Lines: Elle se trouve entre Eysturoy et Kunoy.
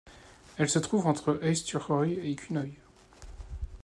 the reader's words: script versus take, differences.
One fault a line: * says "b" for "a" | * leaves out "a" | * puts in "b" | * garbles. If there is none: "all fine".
all fine